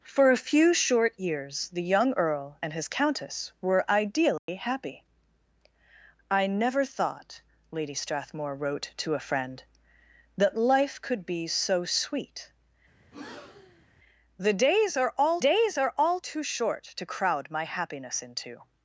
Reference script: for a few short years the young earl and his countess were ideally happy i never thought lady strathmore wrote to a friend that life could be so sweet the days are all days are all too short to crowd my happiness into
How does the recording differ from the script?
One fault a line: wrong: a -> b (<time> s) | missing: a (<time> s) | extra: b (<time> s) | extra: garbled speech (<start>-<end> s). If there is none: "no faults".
no faults